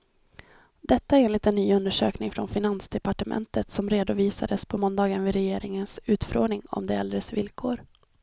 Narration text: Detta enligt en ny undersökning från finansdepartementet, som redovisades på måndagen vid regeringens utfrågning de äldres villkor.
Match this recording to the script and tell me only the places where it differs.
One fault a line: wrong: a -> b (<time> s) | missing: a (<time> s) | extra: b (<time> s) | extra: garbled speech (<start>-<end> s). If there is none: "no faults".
extra: om (6.7 s)